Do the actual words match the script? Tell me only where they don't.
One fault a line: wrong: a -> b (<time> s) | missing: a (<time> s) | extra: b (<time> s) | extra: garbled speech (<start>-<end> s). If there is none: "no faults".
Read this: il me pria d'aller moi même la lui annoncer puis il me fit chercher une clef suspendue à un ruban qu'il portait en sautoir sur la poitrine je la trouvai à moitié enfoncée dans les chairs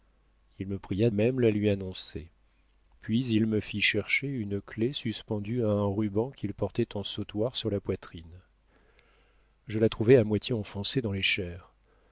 missing: d'aller moi (1.1 s)